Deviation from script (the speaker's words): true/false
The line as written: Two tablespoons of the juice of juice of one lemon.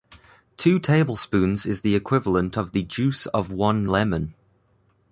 true